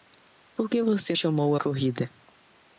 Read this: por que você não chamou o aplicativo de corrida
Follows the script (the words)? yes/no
no